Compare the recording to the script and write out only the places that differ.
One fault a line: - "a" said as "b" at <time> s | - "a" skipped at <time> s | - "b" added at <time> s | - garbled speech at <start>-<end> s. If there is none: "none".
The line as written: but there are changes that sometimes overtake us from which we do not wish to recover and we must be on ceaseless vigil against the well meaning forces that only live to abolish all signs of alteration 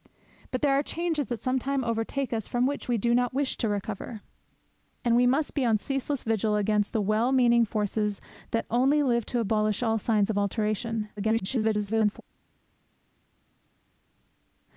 - garbled speech at 11.2-12.2 s